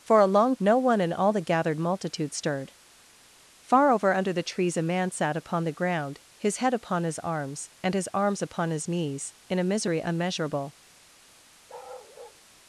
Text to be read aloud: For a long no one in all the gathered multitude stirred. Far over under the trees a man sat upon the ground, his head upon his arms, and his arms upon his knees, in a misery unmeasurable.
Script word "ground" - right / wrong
right